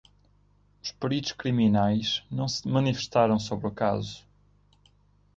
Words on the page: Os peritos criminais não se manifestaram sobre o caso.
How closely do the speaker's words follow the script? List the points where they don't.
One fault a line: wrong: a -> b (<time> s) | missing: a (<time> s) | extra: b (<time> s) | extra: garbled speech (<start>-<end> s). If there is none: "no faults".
no faults